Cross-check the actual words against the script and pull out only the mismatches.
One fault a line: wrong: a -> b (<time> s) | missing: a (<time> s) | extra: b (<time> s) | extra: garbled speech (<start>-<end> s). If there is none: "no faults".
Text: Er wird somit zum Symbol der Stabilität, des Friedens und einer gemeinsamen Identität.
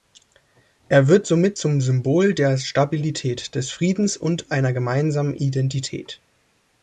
no faults